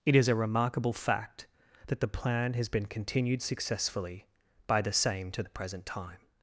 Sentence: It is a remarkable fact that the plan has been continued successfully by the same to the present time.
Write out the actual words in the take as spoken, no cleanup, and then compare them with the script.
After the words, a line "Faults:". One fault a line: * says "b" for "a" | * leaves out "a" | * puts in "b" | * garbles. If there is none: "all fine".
It is a remarkable fact that the plan has been continued successfully by the same to the present time.
Faults:
all fine